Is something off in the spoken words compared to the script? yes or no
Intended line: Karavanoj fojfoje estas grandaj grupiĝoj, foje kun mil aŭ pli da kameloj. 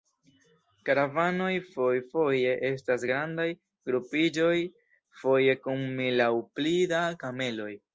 no